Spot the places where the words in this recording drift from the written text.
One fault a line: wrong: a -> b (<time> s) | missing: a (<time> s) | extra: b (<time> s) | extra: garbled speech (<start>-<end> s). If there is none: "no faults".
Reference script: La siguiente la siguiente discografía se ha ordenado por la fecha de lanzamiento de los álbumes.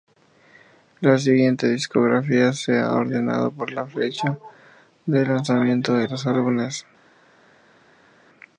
missing: la siguiente (1.7 s)